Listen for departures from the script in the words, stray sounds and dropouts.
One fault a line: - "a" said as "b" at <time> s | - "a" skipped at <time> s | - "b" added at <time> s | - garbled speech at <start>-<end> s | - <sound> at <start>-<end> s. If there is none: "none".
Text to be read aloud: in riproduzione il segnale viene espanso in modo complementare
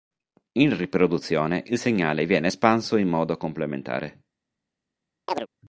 - chirp at 5.3-5.5 s